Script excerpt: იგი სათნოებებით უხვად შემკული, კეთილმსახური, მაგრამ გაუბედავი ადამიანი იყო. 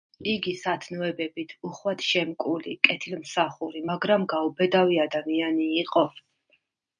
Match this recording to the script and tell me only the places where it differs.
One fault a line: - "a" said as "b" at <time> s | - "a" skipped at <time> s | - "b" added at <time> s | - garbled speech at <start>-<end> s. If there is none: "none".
none